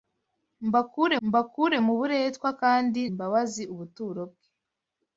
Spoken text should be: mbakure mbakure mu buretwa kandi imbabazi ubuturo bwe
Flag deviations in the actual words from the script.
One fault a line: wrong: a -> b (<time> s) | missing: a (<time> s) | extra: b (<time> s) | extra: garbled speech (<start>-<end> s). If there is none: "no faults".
no faults